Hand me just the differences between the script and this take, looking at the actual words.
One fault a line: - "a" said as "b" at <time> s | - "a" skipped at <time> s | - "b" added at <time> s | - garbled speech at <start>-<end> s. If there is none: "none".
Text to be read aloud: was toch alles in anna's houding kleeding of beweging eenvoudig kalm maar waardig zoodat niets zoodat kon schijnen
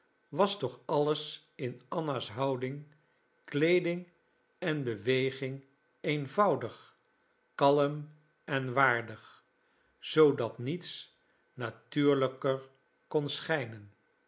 - "of" said as "en" at 4.6 s
- "maar" said as "en" at 8.4 s
- "zoodat" said as "natuurlijker" at 11.5 s